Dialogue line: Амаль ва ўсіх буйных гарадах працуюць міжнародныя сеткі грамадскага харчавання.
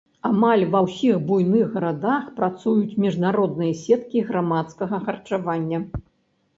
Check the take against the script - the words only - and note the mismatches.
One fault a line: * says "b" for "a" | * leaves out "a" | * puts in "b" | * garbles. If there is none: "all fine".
all fine